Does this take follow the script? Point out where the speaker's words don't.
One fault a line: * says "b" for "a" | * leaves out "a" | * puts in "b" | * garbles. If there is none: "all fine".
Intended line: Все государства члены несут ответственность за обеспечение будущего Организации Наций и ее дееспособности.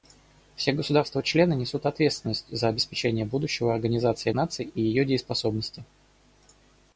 all fine